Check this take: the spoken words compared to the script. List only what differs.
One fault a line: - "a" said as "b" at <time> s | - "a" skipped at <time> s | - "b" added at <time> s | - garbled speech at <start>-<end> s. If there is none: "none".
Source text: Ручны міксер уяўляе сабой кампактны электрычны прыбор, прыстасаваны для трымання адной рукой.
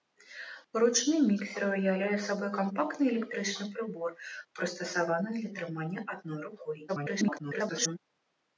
- garbled speech at 6.9-8.0 s